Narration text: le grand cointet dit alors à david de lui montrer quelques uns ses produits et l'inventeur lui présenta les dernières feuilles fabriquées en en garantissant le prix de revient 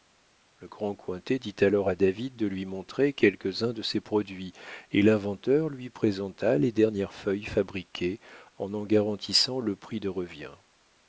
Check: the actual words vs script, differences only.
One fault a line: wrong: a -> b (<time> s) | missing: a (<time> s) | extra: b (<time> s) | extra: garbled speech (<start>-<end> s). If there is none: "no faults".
extra: de (3.7 s)